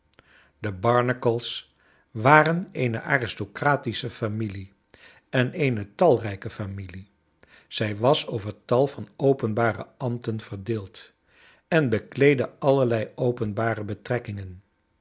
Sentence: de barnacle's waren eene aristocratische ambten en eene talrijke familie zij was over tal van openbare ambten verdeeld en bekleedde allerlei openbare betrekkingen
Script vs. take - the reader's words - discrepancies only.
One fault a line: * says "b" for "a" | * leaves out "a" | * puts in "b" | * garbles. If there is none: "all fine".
* says "familie" for "ambten"